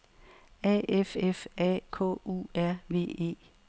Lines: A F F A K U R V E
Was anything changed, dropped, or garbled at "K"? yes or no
no